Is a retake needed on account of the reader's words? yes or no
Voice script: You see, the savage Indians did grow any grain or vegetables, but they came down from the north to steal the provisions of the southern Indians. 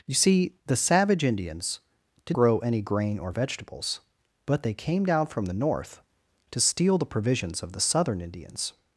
no